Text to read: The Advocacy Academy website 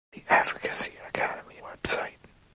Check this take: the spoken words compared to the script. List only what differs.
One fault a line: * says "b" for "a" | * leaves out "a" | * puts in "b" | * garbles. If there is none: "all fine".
all fine